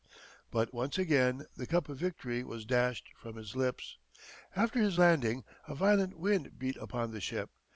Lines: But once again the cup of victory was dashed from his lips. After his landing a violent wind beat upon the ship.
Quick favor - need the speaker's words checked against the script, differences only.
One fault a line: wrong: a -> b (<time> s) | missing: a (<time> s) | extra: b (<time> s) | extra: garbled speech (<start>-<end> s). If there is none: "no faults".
no faults